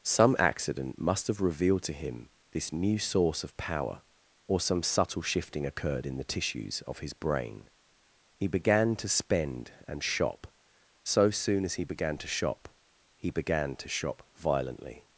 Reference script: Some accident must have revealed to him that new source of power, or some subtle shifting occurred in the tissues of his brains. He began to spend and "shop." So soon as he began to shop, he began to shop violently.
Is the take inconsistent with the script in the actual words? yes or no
yes